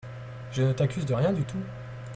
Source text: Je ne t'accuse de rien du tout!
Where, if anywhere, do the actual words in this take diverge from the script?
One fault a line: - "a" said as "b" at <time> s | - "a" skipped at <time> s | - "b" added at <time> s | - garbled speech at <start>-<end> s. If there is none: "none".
none